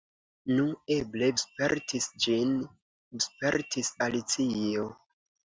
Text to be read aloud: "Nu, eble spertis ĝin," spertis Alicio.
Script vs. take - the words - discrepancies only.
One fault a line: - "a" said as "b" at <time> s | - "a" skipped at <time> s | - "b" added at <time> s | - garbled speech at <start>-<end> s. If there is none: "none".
none